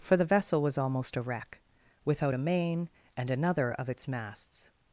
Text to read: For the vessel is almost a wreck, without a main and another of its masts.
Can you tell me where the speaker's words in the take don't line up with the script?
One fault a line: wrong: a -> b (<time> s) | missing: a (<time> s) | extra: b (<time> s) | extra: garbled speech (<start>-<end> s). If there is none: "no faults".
wrong: is -> was (0.6 s)